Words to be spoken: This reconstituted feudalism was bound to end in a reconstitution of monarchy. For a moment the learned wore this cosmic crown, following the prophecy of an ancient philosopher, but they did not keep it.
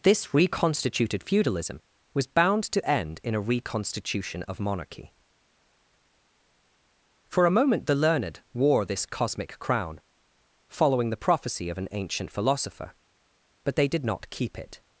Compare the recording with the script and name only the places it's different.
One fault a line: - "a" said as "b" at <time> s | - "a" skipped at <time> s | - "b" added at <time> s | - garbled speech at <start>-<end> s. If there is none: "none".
none